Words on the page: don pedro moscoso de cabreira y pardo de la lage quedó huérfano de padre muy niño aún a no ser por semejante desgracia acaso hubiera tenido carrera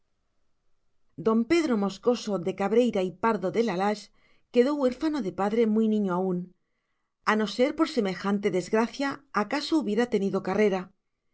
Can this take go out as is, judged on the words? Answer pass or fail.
pass